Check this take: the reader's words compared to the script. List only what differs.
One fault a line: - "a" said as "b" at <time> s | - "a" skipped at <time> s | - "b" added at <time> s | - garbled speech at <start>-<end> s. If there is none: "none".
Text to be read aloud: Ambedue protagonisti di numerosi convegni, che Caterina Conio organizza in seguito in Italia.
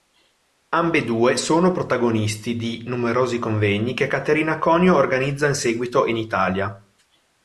- "sono" added at 1.4 s